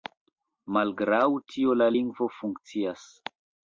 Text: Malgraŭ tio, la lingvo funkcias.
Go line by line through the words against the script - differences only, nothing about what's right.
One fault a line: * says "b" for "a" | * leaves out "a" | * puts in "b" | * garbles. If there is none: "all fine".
all fine